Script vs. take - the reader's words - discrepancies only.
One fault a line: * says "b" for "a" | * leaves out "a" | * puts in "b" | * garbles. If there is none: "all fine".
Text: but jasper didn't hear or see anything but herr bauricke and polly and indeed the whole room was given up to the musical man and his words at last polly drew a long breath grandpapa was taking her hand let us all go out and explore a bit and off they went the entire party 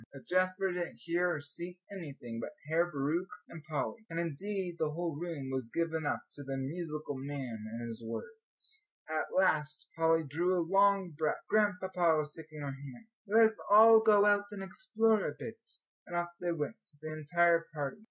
all fine